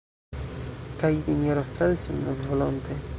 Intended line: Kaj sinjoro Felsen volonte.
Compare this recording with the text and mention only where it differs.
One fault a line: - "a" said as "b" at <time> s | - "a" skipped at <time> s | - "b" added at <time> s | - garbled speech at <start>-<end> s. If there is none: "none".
none